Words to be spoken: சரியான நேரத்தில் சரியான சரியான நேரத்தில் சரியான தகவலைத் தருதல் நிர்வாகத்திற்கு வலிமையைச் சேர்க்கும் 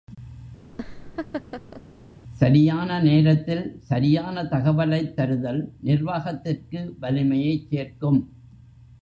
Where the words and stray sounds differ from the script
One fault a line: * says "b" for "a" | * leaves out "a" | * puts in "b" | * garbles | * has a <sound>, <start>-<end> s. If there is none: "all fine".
* has a laugh, 0.7-1.8 s
* leaves out "சரியான நேரத்தில் சரியான"